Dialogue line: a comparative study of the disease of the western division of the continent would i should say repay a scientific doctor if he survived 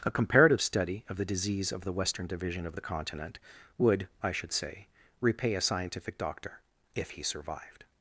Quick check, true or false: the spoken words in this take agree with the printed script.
true